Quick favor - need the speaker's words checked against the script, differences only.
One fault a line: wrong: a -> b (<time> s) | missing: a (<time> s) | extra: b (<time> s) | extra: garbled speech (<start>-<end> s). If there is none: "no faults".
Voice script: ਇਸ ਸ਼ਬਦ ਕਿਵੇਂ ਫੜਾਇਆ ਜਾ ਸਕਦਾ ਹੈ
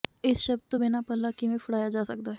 extra: ਤੋਂ ਬਿਨਾਂ ਪੱਲਾ (0.7 s)